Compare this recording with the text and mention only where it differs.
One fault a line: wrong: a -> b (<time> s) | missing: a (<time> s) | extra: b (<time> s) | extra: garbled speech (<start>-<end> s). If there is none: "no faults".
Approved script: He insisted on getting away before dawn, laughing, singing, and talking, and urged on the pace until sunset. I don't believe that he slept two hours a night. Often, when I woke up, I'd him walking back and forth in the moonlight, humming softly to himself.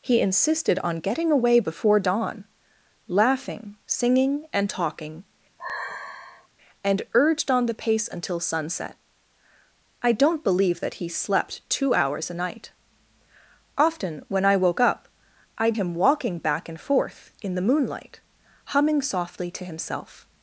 no faults